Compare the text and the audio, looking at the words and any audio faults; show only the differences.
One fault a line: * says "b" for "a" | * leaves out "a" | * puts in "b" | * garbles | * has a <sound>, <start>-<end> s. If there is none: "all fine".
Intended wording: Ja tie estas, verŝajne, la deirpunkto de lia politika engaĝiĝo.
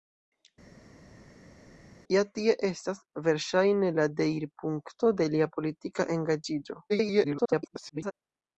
* garbles